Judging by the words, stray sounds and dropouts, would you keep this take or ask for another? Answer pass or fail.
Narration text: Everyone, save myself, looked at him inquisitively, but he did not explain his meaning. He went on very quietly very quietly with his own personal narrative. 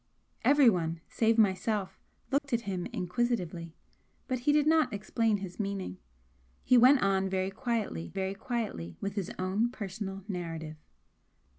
fail